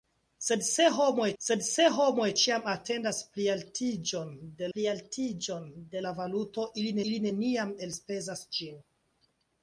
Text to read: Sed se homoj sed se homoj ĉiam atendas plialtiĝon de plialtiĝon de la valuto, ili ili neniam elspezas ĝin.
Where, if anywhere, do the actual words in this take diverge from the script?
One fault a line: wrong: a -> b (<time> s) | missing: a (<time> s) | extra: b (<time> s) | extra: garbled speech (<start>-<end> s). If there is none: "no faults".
no faults